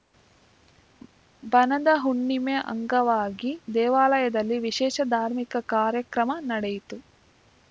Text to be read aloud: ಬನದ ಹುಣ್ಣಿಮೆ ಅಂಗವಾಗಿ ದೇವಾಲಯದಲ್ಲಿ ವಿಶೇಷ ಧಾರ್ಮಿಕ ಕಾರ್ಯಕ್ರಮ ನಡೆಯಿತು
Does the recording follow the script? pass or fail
pass